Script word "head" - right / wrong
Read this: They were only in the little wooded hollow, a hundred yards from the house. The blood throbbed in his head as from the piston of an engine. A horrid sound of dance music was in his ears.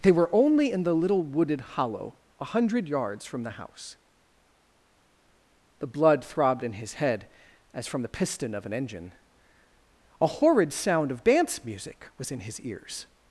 right